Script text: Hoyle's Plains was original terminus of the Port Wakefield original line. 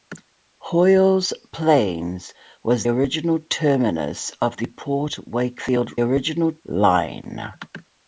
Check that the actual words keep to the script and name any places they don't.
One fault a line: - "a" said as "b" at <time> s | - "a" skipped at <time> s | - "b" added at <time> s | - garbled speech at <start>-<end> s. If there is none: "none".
none